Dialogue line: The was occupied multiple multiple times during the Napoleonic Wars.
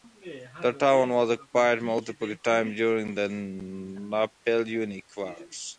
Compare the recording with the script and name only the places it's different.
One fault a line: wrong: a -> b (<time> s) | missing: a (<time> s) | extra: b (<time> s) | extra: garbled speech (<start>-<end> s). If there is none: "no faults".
extra: town (0.8 s)
missing: multiple (2.3 s)